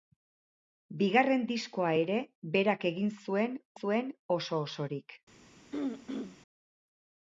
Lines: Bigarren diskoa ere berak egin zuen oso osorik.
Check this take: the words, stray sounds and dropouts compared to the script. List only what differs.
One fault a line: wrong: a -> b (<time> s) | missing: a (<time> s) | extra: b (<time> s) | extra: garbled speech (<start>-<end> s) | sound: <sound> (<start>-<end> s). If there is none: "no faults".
extra: zuen (3.8 s)
sound: throat clearing (5.7-6.4 s)